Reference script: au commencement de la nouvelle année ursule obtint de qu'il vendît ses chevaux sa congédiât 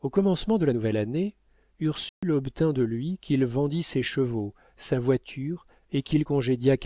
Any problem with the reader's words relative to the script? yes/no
yes